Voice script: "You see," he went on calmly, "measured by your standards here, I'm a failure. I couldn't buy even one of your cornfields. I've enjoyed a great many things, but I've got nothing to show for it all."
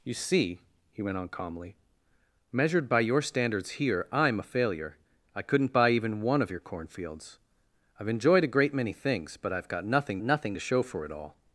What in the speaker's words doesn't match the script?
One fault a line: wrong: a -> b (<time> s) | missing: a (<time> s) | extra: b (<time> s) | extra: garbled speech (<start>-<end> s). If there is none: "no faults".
extra: nothing (10.2 s)